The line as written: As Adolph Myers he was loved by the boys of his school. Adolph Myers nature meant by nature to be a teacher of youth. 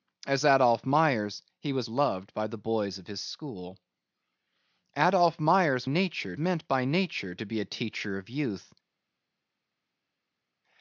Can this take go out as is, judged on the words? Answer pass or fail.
pass